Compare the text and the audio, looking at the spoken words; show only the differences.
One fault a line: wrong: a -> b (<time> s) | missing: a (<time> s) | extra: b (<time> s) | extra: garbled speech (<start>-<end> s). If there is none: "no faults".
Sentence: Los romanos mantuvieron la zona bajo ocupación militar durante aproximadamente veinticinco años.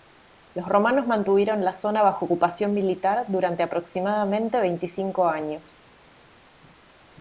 no faults